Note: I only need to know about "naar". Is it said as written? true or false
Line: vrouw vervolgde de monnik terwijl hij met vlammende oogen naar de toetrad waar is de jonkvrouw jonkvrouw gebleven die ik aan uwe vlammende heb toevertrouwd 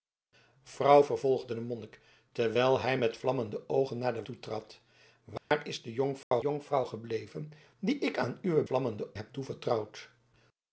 true